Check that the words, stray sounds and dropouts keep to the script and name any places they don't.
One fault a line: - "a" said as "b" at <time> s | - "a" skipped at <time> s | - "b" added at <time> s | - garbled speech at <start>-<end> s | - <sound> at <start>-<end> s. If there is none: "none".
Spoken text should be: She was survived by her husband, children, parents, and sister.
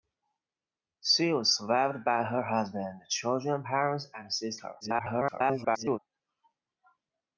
- garbled speech at 4.8-6.0 s